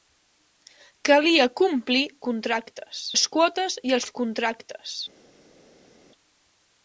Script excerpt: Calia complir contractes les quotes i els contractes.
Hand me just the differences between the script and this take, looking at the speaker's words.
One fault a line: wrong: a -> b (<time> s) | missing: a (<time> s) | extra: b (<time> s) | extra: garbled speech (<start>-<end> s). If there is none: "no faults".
no faults